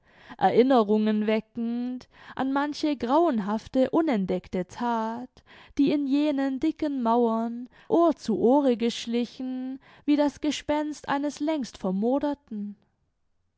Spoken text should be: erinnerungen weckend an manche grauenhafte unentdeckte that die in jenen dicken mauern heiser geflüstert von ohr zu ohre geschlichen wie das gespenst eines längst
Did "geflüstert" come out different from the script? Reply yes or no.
yes